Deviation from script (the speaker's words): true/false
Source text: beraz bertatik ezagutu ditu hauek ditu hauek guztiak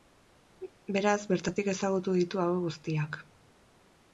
true